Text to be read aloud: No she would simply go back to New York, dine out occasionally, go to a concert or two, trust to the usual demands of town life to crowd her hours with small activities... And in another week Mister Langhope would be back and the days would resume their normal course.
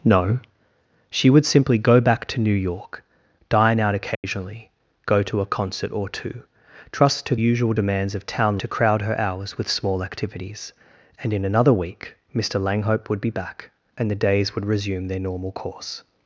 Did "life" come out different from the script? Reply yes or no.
yes